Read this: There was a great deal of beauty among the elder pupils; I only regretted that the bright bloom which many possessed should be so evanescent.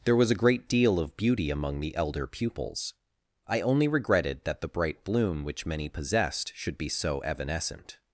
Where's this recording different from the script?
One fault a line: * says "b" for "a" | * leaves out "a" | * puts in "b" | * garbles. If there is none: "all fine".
all fine